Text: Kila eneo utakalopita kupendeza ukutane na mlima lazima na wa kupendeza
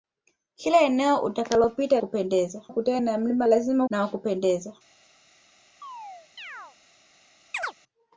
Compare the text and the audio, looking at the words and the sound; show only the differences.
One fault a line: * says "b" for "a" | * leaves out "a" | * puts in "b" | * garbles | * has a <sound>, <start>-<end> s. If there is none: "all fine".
* has a chirp, 5.8-6.8 s
* has a chirp, 7.5-7.7 s